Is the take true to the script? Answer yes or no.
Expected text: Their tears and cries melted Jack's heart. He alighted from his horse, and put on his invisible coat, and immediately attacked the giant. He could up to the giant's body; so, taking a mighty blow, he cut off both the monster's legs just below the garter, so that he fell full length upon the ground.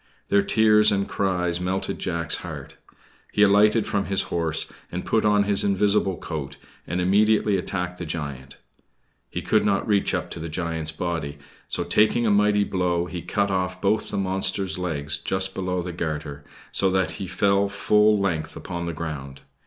no